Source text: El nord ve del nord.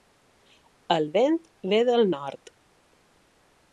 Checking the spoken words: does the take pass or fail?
fail